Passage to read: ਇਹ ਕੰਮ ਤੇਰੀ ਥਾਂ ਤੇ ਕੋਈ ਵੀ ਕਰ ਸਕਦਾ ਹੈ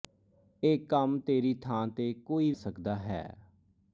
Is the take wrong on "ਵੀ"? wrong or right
wrong